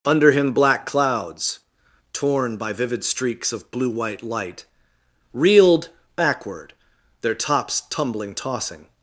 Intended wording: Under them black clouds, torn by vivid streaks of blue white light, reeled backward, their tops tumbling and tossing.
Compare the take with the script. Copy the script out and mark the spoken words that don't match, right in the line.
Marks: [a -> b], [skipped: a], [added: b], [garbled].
Under [them -> him] black clouds, torn by vivid streaks of blue white light, reeled backward, their tops tumbling [skipped: and] tossing.